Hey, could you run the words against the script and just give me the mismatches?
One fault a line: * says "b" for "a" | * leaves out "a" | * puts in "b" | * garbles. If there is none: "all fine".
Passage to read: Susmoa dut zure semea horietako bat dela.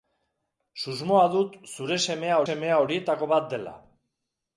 * puts in "semea"